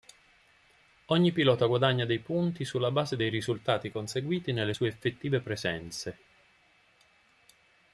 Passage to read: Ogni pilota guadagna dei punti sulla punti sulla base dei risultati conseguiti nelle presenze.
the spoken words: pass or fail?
fail